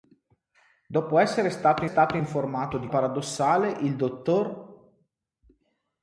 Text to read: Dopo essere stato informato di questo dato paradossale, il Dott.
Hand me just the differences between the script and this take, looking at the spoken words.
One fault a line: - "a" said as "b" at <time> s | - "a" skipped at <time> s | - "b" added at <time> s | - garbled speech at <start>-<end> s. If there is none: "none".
- "stato" added at 1.8 s
- "questo dato" skipped at 2.9 s